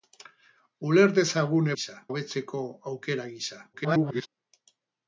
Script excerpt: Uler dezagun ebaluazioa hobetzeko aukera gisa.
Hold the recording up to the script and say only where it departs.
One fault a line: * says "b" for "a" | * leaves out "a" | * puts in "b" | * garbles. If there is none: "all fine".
* says "gisa" for "ebaluazioa"
* garbles